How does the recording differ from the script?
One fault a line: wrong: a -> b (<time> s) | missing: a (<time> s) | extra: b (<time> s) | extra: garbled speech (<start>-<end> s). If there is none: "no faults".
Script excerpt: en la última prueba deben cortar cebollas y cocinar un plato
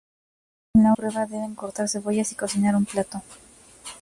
missing: última (0.9 s)